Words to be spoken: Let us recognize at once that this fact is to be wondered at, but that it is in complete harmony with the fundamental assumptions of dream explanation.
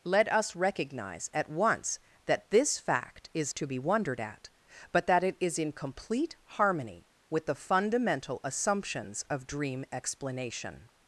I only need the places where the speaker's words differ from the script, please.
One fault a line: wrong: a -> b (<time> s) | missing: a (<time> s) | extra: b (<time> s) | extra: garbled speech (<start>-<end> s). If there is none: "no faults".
no faults